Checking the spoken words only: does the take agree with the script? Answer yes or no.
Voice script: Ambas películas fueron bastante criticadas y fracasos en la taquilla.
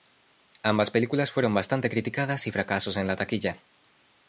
yes